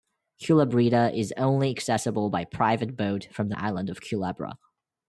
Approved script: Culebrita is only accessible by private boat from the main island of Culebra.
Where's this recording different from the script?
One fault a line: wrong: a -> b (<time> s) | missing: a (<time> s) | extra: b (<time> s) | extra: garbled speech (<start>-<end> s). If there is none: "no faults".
missing: main (3.5 s)